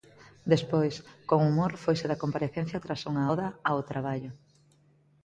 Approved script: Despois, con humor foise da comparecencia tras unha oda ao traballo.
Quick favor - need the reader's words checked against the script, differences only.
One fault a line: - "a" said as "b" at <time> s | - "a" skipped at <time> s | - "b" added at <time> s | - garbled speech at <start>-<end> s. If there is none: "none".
none